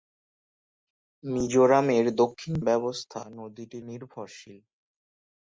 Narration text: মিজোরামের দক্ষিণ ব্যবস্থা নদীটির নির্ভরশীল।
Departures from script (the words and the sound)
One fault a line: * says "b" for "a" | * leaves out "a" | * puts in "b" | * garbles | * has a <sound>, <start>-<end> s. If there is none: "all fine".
all fine